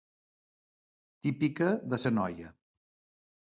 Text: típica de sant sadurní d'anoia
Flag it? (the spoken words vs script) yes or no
yes